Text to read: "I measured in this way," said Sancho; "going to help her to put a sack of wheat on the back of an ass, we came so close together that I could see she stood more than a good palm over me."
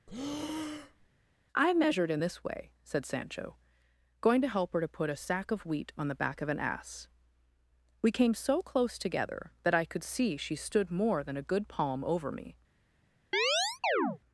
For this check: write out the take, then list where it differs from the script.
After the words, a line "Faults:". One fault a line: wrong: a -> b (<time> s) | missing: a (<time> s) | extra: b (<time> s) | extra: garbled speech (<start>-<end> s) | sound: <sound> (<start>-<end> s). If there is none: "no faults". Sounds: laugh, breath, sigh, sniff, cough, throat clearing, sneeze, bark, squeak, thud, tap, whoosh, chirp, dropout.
"I measured in this way," said Sancho; "going to help her to put a sack of wheat on the back of an ass, we came so close together that I could see she stood more than a good palm over me."
Faults:
sound: breath (0.1-1.1 s)
sound: chirp (13.3-14.2 s)